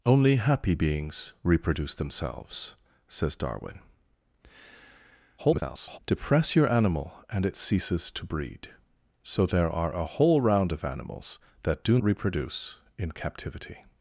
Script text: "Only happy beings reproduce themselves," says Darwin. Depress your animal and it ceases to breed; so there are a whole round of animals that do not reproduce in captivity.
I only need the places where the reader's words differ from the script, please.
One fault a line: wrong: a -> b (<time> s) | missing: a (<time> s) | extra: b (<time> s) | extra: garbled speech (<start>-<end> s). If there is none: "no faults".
extra: garbled speech (5.4-6.0 s)
missing: not (12.0 s)